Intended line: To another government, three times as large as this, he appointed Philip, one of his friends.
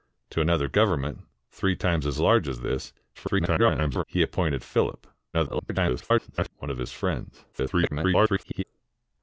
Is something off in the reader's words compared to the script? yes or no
yes